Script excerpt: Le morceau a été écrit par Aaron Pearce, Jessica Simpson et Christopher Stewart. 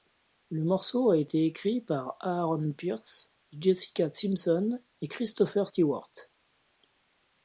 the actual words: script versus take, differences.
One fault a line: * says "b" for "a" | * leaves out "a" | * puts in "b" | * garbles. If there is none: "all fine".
all fine